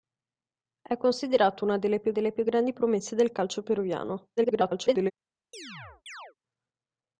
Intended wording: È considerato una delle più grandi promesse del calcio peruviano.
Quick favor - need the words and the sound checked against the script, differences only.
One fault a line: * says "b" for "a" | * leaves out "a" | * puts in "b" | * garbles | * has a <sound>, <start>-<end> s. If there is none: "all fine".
* puts in "delle più"
* garbles
* has a chirp, 5.5-6.3 s